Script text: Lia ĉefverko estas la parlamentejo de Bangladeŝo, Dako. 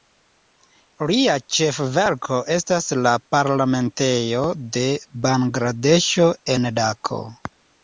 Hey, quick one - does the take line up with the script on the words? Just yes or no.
no